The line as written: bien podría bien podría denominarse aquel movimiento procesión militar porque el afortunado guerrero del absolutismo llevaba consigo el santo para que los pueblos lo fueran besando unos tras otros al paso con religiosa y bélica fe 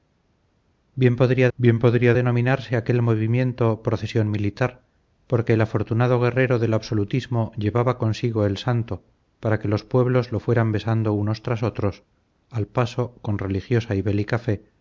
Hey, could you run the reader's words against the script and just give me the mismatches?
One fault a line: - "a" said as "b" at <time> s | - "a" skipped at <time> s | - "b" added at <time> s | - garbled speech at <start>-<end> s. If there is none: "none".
none